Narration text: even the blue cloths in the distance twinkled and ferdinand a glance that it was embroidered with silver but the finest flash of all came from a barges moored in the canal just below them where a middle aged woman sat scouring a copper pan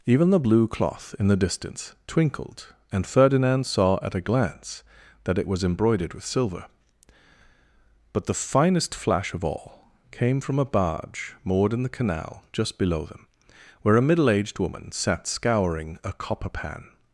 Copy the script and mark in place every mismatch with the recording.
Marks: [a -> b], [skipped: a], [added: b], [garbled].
even the blue [cloths -> cloth] in the distance twinkled and ferdinand [added: saw at] a glance that it was embroidered with silver but the finest flash of all came from a [barges -> barge] moored in the canal just below them where a middle aged woman sat scouring a copper pan